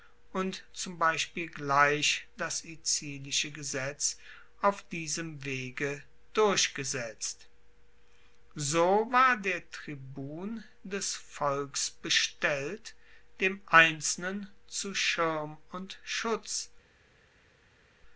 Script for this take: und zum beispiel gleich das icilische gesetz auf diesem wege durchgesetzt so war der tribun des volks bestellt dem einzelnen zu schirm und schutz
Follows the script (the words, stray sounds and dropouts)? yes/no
yes